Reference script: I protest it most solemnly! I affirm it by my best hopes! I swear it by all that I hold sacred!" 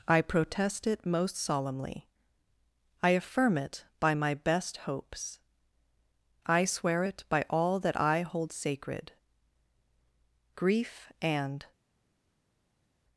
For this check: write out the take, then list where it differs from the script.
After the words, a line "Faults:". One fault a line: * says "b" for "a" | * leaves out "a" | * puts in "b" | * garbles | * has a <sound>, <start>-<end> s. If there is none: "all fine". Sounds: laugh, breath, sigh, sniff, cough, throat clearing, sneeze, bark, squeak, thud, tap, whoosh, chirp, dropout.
I protest it most solemnly! I affirm it by my best hopes! I swear it by all that I hold sacred!" Grief and
Faults:
* puts in "Grief and"